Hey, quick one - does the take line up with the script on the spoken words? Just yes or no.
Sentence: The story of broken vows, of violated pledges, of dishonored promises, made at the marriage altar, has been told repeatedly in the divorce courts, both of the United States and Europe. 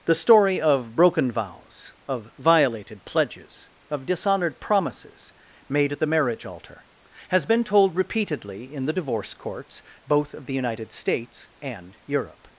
yes